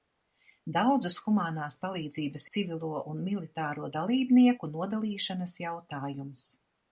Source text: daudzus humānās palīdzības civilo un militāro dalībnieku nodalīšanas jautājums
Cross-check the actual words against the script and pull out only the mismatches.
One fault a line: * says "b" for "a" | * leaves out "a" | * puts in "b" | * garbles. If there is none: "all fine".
all fine